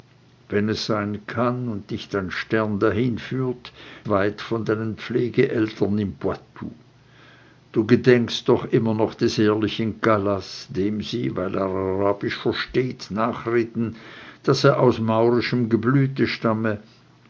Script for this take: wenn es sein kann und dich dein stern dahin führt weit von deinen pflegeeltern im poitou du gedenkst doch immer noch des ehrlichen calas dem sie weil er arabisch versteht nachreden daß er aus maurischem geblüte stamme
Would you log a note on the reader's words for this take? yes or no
no